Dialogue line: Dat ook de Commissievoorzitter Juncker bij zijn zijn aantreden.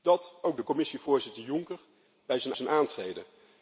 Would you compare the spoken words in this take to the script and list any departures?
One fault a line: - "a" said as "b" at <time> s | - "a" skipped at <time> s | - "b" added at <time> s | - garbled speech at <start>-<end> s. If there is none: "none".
none